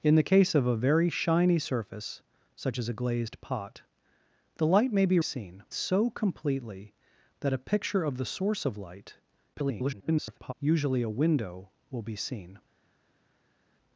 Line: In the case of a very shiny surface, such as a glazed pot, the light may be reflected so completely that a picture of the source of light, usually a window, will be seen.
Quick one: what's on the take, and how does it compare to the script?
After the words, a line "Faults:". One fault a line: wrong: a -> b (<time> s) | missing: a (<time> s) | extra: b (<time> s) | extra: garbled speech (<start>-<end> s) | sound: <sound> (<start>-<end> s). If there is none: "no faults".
In the case of a very shiny surface, such as a glazed pot, the light may be seen so completely that a picture of the source of light, [garbled] usually a window, will be seen.
Faults:
wrong: reflected -> seen (5.2 s)
extra: garbled speech (9.5-10.5 s)